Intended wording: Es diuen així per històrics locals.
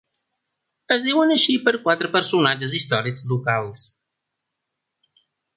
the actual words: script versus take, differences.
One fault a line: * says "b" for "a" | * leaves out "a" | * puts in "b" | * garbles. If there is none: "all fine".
* puts in "quatre personatges"